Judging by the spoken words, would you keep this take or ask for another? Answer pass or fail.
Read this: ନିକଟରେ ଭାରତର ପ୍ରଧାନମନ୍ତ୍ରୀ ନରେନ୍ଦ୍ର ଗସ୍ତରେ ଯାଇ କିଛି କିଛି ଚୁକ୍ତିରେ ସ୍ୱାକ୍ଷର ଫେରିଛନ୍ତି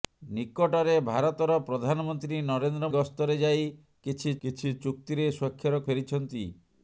pass